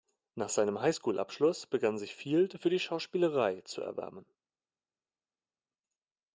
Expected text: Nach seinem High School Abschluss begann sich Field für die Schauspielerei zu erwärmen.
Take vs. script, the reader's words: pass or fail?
pass